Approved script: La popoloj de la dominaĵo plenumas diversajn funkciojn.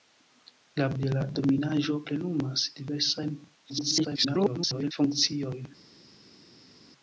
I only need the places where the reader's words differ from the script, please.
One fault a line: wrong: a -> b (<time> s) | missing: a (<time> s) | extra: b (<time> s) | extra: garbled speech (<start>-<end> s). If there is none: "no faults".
missing: popoloj (0.8 s)
extra: garbled speech (3.7-4.9 s)